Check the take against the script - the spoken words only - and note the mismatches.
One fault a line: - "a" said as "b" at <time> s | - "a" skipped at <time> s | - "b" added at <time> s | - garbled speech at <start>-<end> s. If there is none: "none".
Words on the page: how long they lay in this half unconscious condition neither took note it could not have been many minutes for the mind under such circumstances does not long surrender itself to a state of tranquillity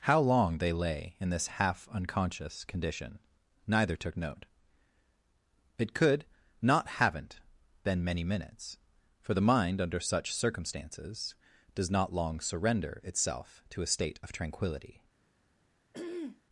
- "have" said as "haven't" at 6.9 s